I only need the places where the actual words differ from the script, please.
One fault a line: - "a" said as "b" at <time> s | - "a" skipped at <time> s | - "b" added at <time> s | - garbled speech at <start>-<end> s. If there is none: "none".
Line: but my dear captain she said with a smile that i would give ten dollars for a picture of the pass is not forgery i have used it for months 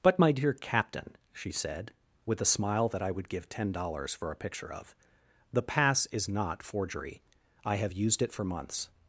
none